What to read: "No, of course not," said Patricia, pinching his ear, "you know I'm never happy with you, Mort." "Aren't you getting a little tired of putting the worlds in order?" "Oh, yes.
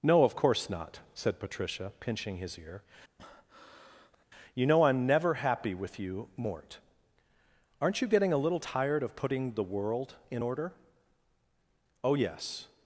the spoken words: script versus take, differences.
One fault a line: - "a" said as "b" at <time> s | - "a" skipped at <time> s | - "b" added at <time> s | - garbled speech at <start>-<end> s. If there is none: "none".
- "worlds" said as "world" at 9.6 s